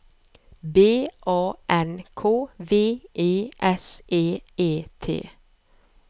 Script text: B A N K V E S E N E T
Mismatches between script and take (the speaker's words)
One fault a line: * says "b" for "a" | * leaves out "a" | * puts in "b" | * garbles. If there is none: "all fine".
* leaves out "N"